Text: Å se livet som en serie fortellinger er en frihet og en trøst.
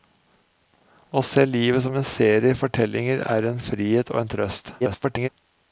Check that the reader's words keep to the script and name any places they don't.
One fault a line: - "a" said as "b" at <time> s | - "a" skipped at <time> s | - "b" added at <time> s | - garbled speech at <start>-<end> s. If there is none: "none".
- garbled speech at 4.8-5.3 s